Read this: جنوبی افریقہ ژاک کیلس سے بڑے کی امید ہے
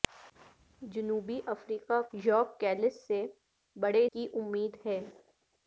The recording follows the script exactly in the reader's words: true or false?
true